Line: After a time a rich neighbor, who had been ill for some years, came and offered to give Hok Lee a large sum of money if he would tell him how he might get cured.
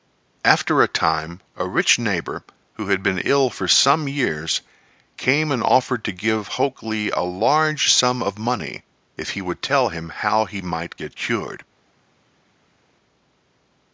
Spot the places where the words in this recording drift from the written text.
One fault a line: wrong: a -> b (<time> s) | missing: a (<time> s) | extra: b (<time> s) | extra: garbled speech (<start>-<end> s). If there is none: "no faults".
no faults